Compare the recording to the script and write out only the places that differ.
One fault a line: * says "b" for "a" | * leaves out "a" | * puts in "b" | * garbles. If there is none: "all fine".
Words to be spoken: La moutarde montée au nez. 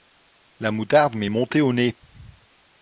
* puts in "m'est"